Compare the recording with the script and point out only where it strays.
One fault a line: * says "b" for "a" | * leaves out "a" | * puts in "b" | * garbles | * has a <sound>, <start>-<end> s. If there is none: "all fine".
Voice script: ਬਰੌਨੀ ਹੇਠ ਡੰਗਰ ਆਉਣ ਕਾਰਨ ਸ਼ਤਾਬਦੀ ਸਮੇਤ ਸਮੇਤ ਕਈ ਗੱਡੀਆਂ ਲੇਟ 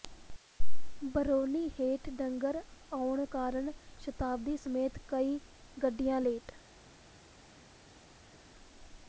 * leaves out "ਸਮੇਤ"